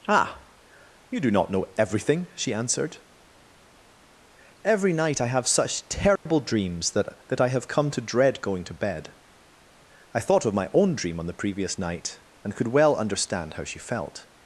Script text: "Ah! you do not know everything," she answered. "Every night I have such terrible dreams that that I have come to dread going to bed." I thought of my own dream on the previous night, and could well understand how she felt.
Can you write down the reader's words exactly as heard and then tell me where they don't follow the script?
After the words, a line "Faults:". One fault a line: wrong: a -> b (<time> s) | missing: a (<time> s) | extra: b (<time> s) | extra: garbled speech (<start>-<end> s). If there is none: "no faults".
"Ah! you do not know everything," she answered. "Every night I have such terrible dreams that that I have come to dread going to bed." I thought of my own dream on the previous night, and could well understand how she felt.
Faults:
no faults